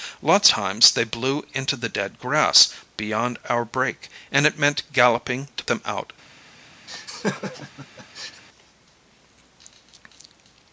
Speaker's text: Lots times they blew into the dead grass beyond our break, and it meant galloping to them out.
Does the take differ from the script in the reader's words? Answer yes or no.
no